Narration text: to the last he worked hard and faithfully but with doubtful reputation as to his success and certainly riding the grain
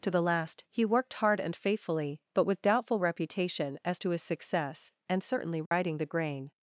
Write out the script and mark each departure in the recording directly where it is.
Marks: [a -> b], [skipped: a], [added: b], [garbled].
to the last he worked hard and faithfully but with doubtful reputation as to his success and certainly riding the grain